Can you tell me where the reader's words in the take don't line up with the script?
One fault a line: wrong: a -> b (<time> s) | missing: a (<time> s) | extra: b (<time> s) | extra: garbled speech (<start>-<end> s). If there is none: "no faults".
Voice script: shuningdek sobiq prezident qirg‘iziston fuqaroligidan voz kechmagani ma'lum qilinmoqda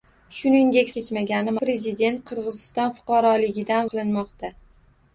wrong: sobiq -> kechmagani (1.0 s)
missing: voz kechmagani ma'lum (3.9 s)